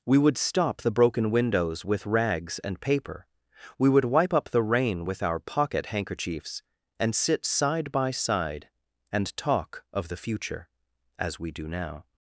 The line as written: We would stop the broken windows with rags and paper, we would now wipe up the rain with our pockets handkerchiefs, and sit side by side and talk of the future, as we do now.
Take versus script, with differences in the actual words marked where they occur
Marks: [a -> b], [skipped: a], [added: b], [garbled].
We would stop the broken windows with rags and paper, we would [skipped: now] wipe up the rain with our [pockets -> pocket] handkerchiefs, and sit side by side and talk of the future, as we do now.